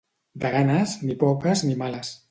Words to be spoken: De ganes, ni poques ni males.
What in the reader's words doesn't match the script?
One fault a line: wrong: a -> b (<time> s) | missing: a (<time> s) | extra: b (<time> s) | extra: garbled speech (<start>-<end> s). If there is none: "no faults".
no faults